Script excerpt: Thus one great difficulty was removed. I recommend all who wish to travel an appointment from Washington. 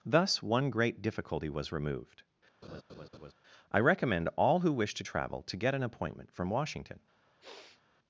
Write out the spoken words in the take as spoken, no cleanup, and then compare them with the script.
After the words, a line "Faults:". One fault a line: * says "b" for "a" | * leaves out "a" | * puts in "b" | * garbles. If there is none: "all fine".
Thus one great difficulty was removed. I recommend all who wish to travel to get an appointment from Washington.
Faults:
* puts in "to get"